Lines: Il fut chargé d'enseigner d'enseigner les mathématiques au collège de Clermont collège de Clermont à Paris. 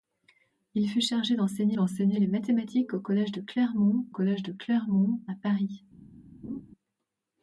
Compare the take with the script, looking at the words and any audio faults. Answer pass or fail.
fail